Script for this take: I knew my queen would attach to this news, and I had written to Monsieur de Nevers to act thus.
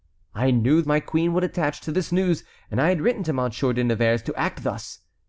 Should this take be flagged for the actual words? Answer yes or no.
no